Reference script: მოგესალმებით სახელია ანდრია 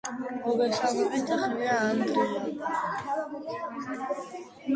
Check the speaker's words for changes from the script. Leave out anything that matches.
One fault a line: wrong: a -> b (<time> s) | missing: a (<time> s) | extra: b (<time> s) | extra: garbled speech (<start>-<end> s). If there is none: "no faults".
no faults